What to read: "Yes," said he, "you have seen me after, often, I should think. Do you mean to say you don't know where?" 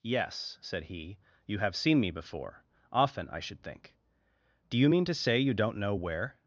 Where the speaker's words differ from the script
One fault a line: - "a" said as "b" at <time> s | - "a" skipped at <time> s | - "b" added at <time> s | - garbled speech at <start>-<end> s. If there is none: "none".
- "after" said as "before" at 2.1 s